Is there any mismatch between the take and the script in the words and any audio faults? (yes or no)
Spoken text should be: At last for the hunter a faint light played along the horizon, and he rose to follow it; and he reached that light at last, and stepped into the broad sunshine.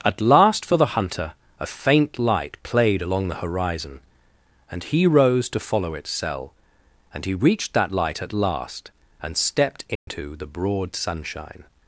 yes